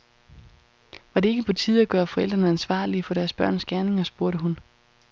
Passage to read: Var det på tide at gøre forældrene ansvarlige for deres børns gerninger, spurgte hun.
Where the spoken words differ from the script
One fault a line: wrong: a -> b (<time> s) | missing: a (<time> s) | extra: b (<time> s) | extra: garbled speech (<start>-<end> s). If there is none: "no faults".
extra: ikke (1.3 s)